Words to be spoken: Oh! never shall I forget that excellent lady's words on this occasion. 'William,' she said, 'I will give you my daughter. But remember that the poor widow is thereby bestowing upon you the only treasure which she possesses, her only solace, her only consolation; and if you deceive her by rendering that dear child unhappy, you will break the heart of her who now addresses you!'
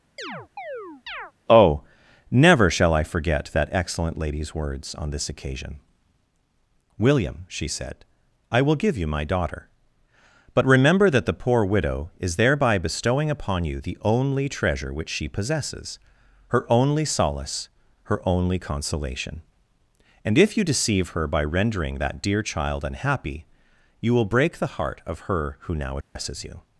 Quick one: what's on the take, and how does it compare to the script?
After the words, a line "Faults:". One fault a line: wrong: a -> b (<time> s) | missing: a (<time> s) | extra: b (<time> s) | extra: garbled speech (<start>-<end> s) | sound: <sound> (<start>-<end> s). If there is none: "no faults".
Oh! never shall I forget that excellent lady's words on this occasion. 'William,' she said, 'I will give you my daughter. But remember that the poor widow is thereby bestowing upon you the only treasure which she possesses, her only solace, her only consolation; and if you deceive her by rendering that dear child unhappy, you will break the heart of her who now addresses you!'
Faults:
sound: chirp (0.2-1.3 s)
sound: dropout (26.0-26.2 s)